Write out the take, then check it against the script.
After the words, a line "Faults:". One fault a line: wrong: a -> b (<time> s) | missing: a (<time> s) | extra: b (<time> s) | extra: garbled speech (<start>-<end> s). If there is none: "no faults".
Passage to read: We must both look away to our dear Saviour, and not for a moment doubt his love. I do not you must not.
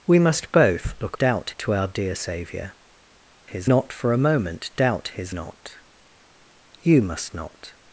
We must both look doubt to our dear Saviour, his not for a moment doubt his not you must not.
Faults:
wrong: away -> doubt (1.2 s)
wrong: and -> his (3.4 s)
missing: love I do (5.3 s)